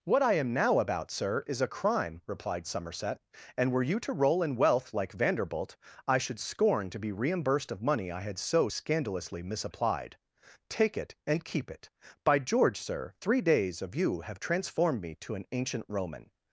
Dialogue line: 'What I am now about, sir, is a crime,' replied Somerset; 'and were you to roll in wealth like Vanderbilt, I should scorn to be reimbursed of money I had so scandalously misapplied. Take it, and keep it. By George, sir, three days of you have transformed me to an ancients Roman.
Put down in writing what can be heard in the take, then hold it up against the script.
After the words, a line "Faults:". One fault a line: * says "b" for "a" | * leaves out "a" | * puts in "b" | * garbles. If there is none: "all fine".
'What I am now about, sir, is a crime,' replied Somerset; 'and were you to roll in wealth like Vanderbilt, I should scorn to be reimbursed of money I had so scandalously misapplied. Take it, and keep it. By George, sir, three days of you have transformed me to an ancient Roman.
Faults:
* says "ancient" for "ancients"